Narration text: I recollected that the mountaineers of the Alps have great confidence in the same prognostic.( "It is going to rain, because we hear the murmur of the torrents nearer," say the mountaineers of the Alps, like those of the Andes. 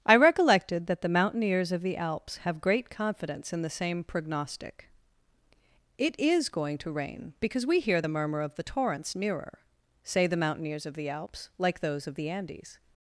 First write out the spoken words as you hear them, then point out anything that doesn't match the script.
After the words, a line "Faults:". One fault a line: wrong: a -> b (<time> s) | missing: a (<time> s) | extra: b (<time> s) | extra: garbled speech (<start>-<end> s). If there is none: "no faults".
I recollected that the mountaineers of the Alps have great confidence in the same prognostic.( "It is going to rain, because we hear the murmur of the torrents nearer," say the mountaineers of the Alps, like those of the Andes.
Faults:
no faults